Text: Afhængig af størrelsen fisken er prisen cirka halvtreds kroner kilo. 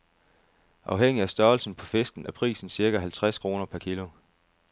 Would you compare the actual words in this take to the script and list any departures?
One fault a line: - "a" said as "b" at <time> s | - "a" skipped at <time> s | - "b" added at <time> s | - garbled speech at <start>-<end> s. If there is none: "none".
- "på" added at 1.8 s
- "per" added at 3.6 s